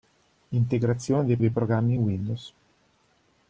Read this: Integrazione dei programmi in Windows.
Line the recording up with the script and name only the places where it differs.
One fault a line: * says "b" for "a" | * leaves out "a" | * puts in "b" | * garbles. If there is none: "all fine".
* puts in "dei"